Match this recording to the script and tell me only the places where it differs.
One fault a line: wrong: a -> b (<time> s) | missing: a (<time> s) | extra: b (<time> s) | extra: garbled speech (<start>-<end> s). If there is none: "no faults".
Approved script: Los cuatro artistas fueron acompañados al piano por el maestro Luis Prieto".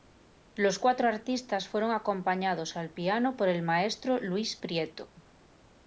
no faults